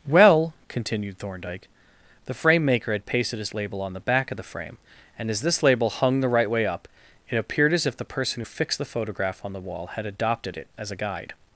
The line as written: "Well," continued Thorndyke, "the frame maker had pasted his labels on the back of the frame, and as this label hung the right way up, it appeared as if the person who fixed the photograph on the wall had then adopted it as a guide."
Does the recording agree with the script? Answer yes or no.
no